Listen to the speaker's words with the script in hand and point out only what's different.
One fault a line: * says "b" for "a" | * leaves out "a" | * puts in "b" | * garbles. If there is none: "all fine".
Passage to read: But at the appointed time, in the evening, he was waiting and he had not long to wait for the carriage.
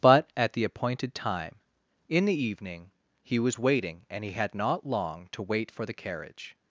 all fine